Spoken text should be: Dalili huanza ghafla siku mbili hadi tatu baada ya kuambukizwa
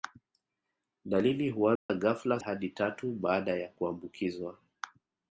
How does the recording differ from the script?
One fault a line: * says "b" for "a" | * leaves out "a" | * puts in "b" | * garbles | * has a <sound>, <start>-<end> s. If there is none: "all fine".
* has a dropout, 1.8-1.9 s
* leaves out "siku mbili"